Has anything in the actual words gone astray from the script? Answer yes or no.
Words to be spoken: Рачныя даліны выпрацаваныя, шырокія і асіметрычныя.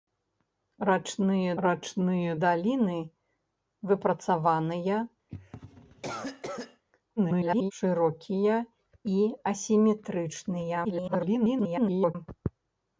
yes